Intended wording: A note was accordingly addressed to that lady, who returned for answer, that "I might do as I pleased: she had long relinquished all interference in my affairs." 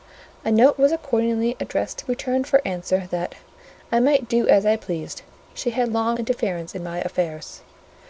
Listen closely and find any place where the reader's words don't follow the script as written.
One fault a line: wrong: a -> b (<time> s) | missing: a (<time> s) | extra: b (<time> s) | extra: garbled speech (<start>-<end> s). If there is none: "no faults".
missing: that lady who (2.1 s)
missing: relinquished all (6.2 s)